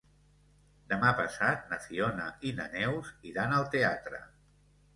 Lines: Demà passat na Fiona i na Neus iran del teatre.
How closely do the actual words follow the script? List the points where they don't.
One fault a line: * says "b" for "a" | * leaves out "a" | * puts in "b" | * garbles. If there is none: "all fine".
* says "al" for "del"